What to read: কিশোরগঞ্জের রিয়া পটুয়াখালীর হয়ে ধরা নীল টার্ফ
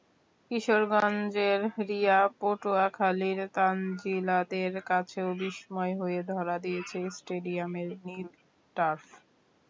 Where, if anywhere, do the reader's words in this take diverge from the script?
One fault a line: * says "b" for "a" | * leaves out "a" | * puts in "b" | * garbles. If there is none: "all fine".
* puts in "তানজিলাদের কাছেও বিস্ময়"
* puts in "দিয়েছে স্টেডিয়ামের"